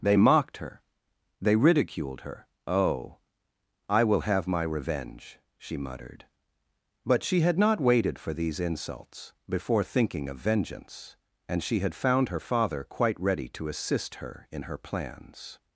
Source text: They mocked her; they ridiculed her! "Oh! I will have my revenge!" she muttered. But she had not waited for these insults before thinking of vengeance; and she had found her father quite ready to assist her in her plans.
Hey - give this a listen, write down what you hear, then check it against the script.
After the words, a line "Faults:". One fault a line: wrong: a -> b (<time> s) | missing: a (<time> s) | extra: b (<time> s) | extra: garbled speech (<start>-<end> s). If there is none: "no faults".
They mocked her; they ridiculed her! "Oh! I will have my revenge!" she muttered. But she had not waited for these insults before thinking of vengeance; and she had found her father quite ready to assist her in her plans.
Faults:
no faults